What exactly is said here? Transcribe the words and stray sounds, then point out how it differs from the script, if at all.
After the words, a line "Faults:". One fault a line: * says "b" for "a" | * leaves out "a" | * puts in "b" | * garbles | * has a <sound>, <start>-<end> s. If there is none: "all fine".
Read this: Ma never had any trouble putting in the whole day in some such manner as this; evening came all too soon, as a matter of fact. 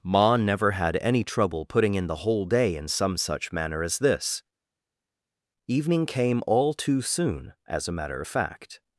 Ma never had any trouble putting in the whole day in some such manner as this; evening came all too soon, as a matter of fact.
Faults:
all fine